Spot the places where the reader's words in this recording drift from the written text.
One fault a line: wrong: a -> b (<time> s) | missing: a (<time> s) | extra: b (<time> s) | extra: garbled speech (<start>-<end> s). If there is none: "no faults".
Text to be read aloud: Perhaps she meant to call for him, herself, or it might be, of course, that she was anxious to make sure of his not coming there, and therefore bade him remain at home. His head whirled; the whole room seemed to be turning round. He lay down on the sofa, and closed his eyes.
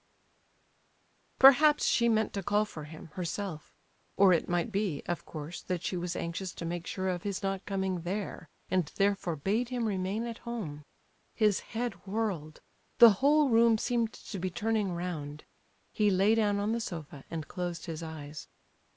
no faults